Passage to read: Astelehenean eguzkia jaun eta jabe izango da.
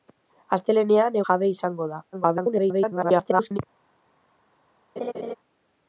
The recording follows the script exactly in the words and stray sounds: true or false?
false